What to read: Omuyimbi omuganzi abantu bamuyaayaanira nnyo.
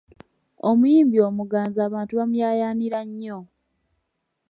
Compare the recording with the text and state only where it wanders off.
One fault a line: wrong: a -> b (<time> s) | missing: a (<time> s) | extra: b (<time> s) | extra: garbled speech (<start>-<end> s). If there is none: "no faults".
no faults